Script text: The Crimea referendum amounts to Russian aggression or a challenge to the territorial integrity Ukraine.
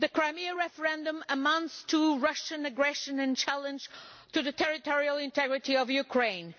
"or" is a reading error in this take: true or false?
true